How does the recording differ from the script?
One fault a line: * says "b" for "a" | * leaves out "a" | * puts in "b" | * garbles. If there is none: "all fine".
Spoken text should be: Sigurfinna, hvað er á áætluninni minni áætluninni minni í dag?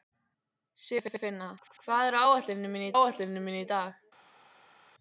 all fine